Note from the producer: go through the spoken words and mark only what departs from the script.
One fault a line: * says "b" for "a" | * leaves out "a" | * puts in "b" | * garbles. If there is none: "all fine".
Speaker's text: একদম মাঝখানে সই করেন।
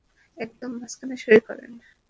all fine